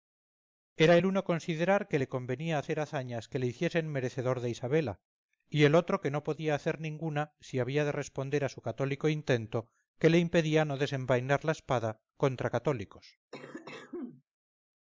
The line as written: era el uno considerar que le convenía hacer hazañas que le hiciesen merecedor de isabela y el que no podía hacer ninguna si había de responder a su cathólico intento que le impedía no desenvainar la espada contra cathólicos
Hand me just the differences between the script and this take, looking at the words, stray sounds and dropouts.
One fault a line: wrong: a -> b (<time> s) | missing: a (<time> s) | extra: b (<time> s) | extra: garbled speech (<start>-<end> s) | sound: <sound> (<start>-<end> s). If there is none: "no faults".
extra: otro (5.7 s)
sound: cough (13.3-14.2 s)